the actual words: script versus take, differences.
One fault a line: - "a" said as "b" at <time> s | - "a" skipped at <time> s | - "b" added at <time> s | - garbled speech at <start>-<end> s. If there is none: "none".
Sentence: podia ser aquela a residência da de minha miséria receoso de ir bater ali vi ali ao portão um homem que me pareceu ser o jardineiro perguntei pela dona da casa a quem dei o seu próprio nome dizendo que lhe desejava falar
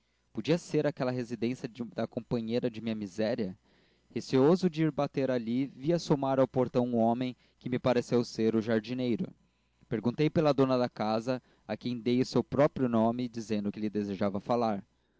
- "companheira" added at 2.1 s
- "ali" said as "assomar" at 5.9 s